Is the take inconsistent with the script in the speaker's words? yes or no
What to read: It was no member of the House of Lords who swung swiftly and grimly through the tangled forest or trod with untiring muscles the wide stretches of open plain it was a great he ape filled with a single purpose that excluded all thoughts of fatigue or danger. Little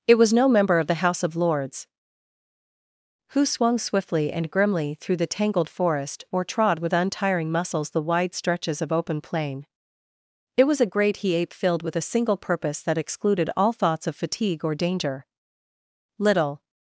no